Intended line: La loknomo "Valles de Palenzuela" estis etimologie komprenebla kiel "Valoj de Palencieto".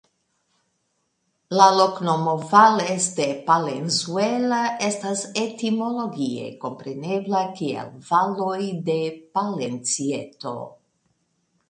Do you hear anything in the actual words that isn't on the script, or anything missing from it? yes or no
yes